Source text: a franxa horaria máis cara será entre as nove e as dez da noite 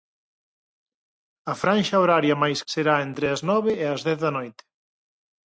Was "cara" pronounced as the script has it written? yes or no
no